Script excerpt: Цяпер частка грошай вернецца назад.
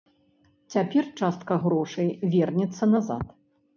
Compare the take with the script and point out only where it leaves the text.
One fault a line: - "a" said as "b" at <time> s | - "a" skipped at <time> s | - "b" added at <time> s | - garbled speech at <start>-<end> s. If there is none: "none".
none